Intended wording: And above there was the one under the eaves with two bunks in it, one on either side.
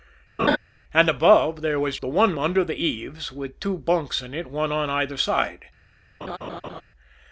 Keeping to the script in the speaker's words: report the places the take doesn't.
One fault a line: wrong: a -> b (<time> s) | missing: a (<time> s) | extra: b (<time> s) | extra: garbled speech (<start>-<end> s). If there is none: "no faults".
no faults